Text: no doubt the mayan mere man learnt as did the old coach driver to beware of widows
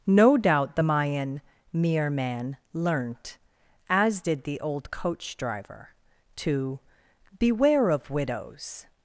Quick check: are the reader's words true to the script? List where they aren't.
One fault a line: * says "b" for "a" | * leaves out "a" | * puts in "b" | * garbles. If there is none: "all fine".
all fine